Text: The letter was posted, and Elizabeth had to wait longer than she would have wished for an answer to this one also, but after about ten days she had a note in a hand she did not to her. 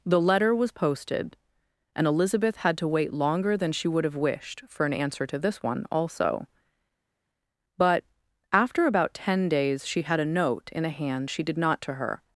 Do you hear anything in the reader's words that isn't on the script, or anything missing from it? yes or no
no